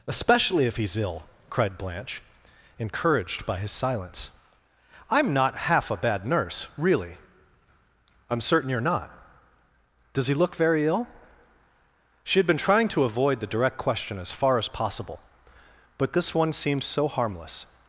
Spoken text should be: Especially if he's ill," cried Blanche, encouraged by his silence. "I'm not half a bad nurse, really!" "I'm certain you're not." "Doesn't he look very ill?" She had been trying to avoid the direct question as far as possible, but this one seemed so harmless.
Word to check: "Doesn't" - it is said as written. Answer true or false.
false